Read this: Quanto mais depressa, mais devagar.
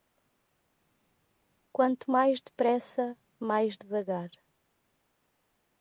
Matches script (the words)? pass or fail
pass